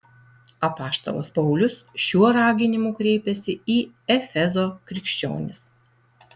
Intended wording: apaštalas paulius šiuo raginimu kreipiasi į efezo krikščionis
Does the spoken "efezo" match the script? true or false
true